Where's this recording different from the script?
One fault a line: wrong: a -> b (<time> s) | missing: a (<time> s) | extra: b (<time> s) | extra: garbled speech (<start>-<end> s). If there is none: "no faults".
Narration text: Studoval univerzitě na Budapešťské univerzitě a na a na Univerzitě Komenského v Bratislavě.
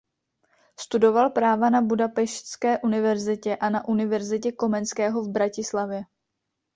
wrong: univerzitě -> práva (1.3 s)
missing: a na (3.9 s)